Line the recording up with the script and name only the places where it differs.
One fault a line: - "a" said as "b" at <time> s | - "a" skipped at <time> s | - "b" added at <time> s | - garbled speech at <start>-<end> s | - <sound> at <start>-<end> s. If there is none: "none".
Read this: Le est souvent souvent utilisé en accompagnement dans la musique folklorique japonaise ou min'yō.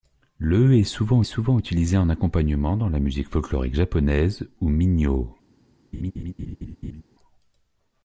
- laugh at 5.9-7.0 s